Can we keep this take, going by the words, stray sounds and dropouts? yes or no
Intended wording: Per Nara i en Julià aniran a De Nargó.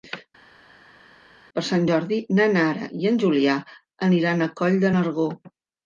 no